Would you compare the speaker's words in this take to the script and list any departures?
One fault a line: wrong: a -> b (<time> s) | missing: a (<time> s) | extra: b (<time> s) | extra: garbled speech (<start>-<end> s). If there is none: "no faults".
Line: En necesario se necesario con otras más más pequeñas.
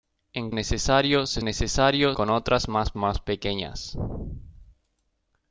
no faults